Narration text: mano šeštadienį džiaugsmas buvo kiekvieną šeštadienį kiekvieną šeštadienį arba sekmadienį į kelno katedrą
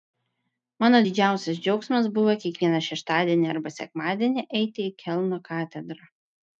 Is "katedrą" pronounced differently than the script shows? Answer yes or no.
no